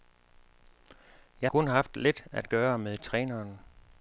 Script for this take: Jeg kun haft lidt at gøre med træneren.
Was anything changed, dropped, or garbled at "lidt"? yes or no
no